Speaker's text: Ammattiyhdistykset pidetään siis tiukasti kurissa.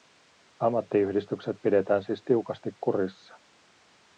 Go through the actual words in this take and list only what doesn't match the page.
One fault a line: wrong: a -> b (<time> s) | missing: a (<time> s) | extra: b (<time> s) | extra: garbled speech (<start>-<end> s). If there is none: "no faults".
no faults